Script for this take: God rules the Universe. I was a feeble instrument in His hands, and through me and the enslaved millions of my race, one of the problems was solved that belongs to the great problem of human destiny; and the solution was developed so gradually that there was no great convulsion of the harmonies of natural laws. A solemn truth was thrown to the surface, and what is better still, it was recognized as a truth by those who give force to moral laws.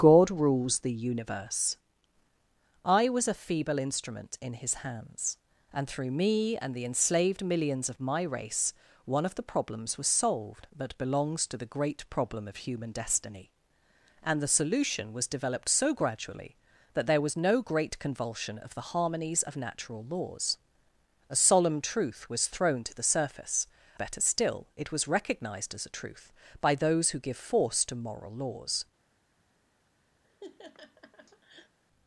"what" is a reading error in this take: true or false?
true